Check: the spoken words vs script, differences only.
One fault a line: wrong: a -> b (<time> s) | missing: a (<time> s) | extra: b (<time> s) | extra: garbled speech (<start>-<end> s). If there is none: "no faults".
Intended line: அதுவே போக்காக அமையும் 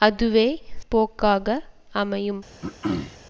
no faults